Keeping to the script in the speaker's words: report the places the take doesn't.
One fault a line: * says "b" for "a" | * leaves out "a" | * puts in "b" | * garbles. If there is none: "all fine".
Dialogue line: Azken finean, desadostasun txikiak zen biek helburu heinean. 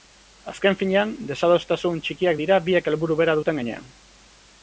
* says "dira" for "zen"
* puts in "bera duten"